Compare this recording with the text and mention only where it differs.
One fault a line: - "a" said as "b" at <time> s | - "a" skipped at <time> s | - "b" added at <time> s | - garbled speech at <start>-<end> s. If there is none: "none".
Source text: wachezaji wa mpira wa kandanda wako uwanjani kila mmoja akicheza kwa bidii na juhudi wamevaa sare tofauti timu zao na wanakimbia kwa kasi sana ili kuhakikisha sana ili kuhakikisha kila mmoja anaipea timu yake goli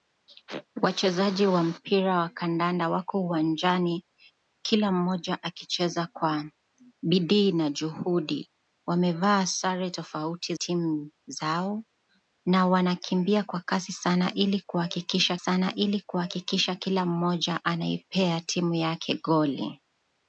none